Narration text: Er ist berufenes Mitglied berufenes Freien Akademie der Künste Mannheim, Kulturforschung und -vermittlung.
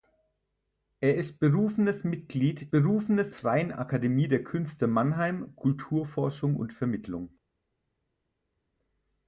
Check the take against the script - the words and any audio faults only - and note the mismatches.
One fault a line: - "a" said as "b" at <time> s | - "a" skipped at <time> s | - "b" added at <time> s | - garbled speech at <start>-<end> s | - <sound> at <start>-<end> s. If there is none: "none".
none